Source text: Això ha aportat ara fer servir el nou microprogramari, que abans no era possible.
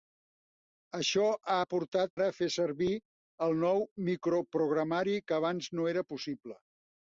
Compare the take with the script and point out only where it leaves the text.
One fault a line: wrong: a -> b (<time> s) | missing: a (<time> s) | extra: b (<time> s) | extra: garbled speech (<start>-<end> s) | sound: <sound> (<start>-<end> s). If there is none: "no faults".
no faults